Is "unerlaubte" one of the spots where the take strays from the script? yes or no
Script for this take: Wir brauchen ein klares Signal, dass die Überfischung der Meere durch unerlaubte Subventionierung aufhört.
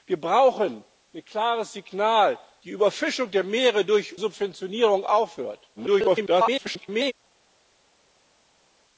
yes